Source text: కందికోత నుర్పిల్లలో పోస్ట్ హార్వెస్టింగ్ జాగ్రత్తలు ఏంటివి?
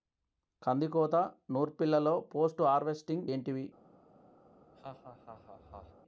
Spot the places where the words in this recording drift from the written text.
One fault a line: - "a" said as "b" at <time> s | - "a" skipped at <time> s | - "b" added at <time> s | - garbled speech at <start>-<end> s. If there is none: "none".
- "జాగ్రత్తలు" skipped at 3.2 s